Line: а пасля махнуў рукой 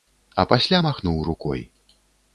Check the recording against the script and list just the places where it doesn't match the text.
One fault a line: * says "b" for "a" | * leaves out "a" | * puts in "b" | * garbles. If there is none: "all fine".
all fine